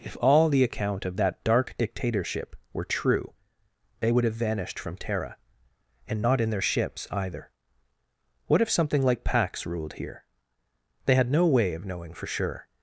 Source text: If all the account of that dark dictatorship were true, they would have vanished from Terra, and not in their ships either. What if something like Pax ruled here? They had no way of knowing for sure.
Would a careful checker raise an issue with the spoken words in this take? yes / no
no